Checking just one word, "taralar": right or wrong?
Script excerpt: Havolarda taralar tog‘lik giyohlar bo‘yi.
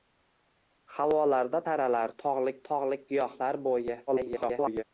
right